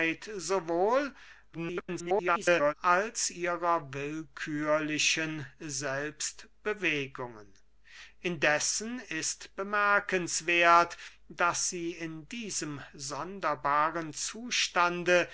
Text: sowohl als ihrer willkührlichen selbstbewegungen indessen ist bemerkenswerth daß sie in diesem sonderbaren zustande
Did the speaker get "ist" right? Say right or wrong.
right